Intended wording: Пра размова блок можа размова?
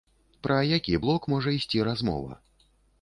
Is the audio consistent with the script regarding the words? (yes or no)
no